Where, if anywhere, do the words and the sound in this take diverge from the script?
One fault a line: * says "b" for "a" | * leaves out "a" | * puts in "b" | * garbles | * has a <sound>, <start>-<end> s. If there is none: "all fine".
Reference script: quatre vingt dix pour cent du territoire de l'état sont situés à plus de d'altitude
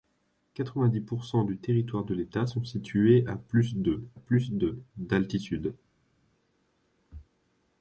* puts in "plus de"